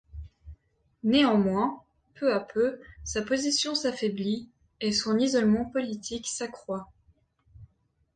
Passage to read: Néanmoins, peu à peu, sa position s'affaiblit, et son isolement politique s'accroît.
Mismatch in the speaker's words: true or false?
false